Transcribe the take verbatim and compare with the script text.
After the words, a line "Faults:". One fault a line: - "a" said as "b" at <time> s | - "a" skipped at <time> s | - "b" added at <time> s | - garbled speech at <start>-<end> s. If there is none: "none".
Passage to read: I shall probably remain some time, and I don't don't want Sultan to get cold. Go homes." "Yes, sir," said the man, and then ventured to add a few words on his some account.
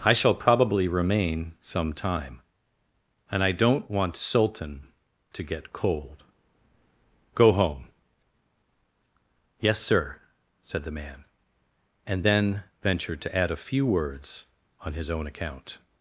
I shall probably remain some time, and I don't want Sultan to get cold. Go home." "Yes, sir," said the man, and then ventured to add a few words on his own account.
Faults:
- "don't" skipped at 3.9 s
- "homes" said as "home" at 7.5 s
- "some" said as "own" at 15.1 s